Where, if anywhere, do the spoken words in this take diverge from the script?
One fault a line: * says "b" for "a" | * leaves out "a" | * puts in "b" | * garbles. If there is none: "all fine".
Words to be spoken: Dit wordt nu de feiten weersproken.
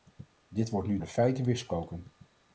all fine